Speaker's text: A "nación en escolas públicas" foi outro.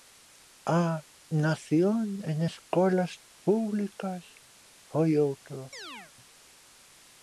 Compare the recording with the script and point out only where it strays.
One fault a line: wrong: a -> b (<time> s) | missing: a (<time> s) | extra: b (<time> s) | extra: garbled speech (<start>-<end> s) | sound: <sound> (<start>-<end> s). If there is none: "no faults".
sound: chirp (5.7-6.1 s)